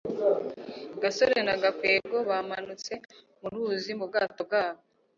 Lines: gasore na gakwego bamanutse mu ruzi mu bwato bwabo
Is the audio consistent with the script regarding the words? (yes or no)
yes